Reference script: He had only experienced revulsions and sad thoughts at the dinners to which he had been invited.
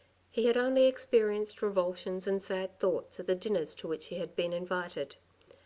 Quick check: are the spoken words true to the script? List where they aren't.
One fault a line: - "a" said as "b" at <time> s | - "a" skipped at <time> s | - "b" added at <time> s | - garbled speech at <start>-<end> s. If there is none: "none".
none